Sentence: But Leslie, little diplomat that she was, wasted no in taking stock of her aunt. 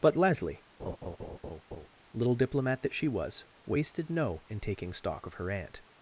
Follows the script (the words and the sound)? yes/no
no